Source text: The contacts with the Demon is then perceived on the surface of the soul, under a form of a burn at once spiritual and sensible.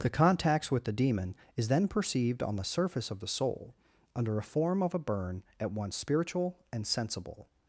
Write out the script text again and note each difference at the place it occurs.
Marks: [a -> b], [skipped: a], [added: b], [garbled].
The contacts with the Demon is then perceived on the surface of the soul, under a form of a burn at once spiritual and sensible.